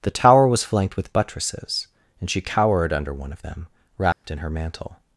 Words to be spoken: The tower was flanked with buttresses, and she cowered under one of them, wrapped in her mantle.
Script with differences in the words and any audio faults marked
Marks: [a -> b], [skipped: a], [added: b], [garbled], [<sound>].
The tower was flanked with buttresses, and she cowered under one of them, wrapped [dropout] in her mantle.